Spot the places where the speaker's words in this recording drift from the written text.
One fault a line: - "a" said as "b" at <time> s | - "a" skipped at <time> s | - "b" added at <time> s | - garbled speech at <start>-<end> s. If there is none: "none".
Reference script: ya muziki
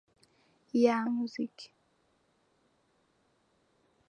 none